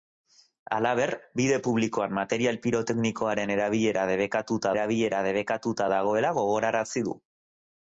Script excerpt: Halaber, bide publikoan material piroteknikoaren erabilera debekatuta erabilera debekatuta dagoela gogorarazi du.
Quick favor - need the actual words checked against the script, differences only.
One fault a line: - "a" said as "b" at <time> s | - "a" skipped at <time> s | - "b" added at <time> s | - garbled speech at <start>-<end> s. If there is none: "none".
none